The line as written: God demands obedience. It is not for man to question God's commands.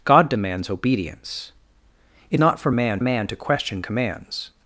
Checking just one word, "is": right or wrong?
wrong